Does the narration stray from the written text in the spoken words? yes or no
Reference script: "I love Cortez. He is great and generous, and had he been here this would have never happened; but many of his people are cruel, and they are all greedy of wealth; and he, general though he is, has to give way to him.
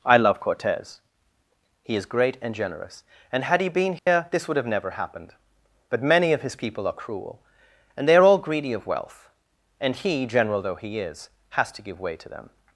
yes